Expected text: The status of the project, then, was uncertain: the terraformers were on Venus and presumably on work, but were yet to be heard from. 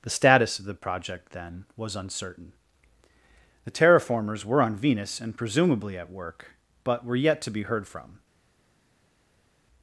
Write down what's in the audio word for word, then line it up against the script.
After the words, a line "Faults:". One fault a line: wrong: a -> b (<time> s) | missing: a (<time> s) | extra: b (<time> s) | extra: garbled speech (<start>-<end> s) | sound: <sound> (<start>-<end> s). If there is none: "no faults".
The status of the project, then, was uncertain: the terraformers were on Venus and presumably at work, but were yet to be heard from.
Faults:
wrong: on -> at (6.0 s)